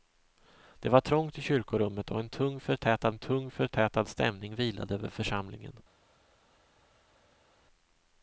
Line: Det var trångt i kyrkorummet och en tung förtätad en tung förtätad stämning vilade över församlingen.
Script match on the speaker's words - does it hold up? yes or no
yes